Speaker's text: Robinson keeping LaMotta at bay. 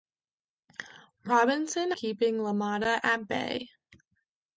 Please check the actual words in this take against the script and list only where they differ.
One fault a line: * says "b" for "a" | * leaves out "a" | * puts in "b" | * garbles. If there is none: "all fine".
all fine